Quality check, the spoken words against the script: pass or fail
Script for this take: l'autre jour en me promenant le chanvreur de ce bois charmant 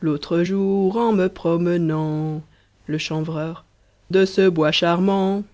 pass